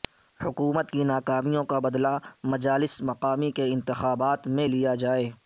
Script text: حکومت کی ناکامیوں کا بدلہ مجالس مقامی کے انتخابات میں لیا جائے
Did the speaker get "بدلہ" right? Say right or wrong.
right